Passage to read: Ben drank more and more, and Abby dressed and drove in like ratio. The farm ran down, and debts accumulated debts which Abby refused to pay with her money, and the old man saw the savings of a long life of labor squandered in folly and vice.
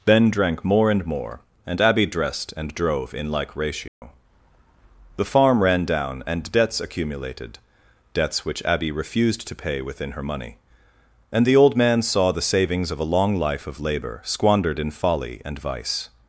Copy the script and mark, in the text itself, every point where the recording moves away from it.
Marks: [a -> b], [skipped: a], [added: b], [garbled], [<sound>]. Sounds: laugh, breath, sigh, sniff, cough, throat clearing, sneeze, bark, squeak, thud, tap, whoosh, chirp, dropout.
Ben drank more and more, and Abby dressed and drove in like ratio. [dropout] The farm ran down, and debts accumulated debts which Abby refused to pay [with -> within] her money, and the old man saw the savings of a long life of labor squandered in folly and vice.